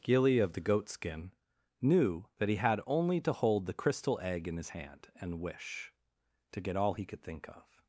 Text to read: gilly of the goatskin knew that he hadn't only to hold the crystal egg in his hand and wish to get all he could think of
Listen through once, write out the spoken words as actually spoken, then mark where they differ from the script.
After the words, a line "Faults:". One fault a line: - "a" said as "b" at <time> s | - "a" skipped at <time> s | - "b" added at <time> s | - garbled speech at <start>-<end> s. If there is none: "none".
gilly of the goatskin knew that he had only to hold the crystal egg in his hand and wish to get all he could think of
Faults:
- "hadn't" said as "had" at 2.6 s